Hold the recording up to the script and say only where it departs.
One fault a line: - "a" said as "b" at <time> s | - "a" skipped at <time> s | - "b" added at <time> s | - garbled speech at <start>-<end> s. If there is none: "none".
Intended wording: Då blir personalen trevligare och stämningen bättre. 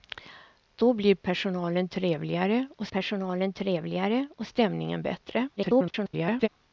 - "personalen trevligare och" added at 2.8 s
- garbled speech at 5.6-6.5 s